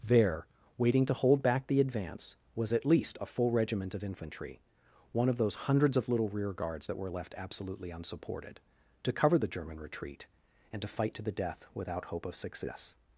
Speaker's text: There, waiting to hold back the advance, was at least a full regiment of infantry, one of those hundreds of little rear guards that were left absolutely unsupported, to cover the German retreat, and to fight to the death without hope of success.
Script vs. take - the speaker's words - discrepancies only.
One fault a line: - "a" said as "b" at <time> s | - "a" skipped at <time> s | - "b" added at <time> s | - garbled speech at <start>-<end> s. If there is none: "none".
none